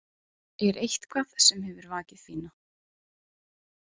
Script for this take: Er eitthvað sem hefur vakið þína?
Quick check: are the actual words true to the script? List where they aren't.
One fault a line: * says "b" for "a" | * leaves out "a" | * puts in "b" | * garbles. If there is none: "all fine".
all fine